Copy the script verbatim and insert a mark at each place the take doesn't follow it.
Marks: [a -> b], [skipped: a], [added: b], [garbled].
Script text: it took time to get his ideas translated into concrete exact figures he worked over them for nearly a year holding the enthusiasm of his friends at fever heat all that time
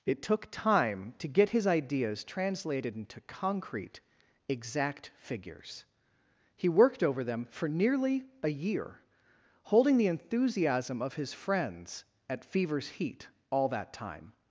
it took time to get his ideas translated into concrete exact figures he worked over them for nearly a year holding the enthusiasm of his friends at [fever -> fevers] heat all that time